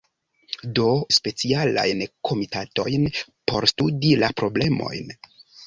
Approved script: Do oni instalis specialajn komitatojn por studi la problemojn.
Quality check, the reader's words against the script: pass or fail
fail